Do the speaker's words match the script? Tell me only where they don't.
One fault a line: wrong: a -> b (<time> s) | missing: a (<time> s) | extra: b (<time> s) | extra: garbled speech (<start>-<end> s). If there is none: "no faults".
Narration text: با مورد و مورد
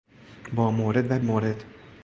no faults